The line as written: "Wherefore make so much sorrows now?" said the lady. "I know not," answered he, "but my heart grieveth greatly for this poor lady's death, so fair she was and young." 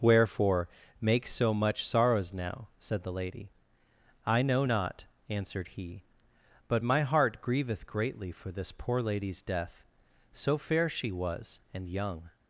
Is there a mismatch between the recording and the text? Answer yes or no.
no